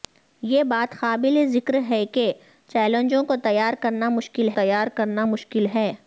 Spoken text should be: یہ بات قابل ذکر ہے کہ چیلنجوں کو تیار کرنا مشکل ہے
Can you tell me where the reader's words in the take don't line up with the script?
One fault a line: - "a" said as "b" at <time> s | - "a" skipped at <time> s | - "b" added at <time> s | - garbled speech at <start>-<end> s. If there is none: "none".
- "تیار کرنا مشکل" added at 4.5 s